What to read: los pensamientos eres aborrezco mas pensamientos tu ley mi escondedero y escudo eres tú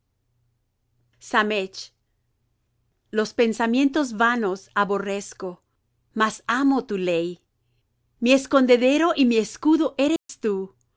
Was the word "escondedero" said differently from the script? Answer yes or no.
no